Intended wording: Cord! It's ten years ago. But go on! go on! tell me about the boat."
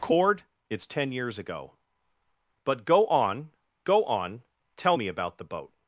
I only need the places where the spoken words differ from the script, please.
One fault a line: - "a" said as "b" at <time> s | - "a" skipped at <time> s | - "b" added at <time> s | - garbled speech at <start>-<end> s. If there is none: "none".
none